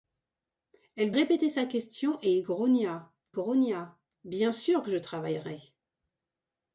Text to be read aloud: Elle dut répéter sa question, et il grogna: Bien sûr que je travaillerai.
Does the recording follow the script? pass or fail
fail